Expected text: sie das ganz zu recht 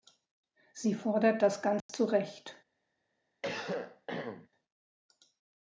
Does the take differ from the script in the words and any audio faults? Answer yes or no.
yes